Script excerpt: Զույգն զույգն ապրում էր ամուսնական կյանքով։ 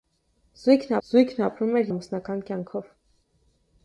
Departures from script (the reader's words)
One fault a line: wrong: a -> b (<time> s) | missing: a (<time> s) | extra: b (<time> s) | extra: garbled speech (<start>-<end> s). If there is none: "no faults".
no faults